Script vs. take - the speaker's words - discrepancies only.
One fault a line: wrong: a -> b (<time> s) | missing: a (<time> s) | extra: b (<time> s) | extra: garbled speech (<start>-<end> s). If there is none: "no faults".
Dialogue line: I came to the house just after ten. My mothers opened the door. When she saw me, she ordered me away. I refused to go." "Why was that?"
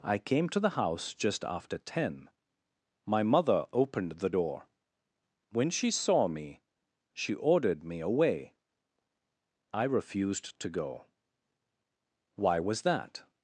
wrong: mothers -> mother (3.2 s)